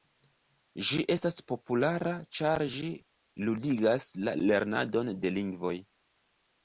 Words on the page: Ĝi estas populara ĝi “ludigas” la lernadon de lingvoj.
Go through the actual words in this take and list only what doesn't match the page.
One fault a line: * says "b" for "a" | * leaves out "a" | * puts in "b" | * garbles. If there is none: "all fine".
* puts in "ĉar"